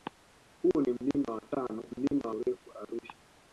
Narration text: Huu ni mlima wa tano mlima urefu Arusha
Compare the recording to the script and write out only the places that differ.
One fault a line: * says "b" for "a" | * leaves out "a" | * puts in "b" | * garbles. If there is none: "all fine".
all fine